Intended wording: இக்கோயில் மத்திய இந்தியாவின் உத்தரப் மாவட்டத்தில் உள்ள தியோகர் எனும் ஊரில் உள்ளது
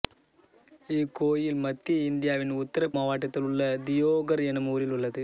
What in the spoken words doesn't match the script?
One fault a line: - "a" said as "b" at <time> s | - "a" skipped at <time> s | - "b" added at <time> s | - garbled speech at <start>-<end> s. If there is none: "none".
none